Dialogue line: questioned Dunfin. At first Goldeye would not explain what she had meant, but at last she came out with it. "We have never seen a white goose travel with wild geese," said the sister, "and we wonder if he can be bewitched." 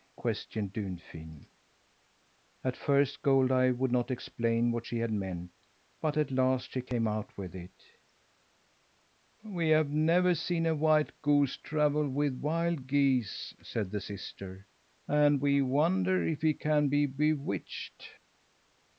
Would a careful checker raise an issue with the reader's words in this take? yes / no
no